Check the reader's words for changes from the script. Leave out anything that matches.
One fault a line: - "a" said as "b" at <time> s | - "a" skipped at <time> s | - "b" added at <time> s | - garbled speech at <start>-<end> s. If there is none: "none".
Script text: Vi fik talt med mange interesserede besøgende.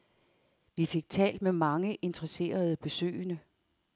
none